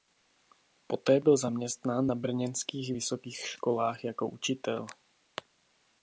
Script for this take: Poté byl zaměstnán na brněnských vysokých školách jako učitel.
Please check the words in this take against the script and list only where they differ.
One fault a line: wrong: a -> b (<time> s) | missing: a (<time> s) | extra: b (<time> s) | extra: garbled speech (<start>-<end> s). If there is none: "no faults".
no faults